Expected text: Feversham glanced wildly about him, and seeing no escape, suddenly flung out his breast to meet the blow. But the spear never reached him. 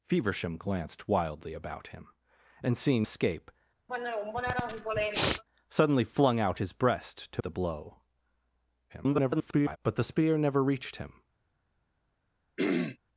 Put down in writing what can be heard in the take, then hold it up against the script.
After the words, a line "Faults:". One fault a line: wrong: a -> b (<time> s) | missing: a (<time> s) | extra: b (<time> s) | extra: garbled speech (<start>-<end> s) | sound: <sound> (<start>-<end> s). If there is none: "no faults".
Feversham glanced wildly about him, and seeing escape, suddenly flung out his breast to the blow. [garbled] But the spear never reached him.
Faults:
missing: no (3.1 s)
sound: sniff (3.9-5.4 s)
missing: meet (7.4 s)
extra: garbled speech (8.9-9.8 s)
sound: throat clearing (12.6-13.0 s)